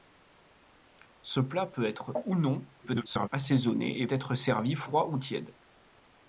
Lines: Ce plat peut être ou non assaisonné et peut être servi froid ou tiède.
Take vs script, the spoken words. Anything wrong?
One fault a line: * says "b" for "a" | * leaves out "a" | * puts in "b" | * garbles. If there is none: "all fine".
* garbles
* leaves out "peut"